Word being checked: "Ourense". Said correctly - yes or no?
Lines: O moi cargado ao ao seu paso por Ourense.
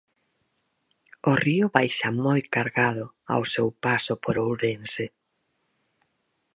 yes